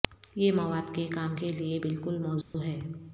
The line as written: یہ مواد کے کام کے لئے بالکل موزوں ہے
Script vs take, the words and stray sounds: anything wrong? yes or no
yes